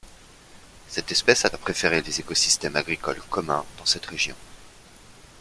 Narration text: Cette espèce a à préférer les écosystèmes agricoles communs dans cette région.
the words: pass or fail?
pass